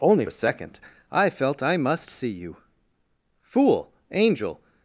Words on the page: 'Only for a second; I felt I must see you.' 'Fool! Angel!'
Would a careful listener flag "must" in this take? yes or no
no